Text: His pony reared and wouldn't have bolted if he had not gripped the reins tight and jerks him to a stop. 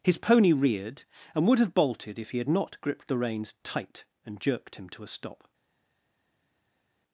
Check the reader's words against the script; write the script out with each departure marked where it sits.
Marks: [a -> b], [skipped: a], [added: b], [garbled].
His pony reared and [wouldn't -> would] have bolted if he had not gripped the reins tight and [jerks -> jerked] him to a stop.